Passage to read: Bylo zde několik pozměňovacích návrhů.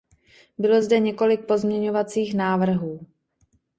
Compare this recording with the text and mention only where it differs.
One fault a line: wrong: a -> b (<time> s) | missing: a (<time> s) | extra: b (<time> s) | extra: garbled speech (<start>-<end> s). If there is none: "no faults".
no faults